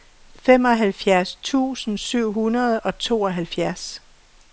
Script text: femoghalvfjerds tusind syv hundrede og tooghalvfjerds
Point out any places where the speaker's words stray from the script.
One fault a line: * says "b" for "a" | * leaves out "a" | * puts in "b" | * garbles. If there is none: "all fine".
all fine